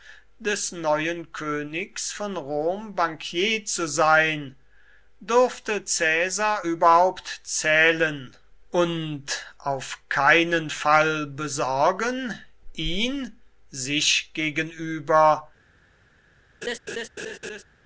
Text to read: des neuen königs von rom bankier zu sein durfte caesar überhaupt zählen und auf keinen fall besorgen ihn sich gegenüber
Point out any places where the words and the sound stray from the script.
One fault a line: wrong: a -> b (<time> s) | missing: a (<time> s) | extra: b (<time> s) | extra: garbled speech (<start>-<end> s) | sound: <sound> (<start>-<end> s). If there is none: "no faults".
sound: laugh (16.6-17.6 s)